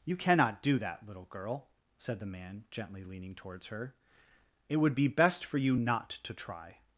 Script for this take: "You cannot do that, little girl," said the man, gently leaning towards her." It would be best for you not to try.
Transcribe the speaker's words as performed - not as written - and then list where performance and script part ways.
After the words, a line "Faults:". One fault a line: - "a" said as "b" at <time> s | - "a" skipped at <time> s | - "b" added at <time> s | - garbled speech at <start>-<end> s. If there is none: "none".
"You cannot do that, little girl," said the man, gently leaning towards her." It would be best for you not to try.
Faults:
none